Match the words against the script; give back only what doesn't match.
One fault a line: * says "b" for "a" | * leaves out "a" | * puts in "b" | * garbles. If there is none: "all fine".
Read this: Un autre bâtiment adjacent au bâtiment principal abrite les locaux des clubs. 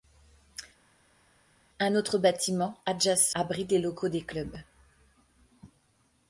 * leaves out "au bâtiment principal"